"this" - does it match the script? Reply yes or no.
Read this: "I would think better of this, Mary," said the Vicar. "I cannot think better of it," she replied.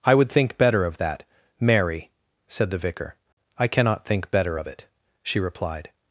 no